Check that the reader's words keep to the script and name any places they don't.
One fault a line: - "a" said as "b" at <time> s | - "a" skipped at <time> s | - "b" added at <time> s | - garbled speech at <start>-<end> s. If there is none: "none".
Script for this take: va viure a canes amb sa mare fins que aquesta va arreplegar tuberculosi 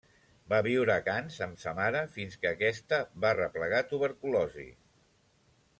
none